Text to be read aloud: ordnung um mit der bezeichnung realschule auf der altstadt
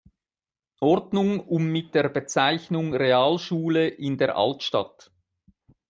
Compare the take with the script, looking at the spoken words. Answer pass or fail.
fail